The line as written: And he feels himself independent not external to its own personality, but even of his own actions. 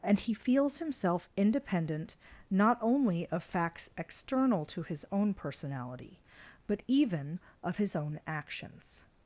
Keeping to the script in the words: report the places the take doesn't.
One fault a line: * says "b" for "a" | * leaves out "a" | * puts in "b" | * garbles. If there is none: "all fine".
* puts in "only of facts"
* says "his" for "its"